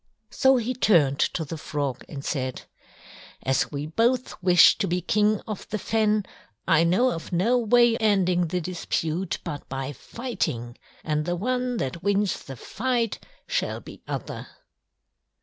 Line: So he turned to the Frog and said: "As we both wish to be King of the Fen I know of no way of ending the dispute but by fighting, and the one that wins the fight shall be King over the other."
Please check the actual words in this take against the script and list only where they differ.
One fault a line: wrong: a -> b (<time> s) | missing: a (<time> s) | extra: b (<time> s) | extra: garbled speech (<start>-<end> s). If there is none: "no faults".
missing: of (8.0 s)
missing: King over the (14.0 s)